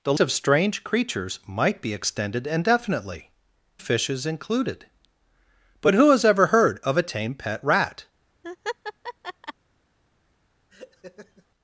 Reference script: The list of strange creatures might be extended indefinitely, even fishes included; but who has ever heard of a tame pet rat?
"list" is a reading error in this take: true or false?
true